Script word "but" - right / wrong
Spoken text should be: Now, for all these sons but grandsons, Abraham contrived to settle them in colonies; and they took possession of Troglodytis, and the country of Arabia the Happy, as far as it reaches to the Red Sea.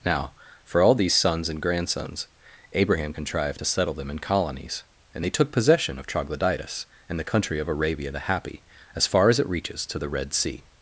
wrong